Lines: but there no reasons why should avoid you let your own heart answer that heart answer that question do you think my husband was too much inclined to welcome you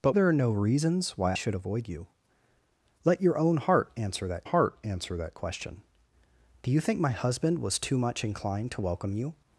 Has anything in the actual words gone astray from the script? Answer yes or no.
no